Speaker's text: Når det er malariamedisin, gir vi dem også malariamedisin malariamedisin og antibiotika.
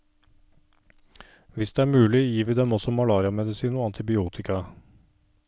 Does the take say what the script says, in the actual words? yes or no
no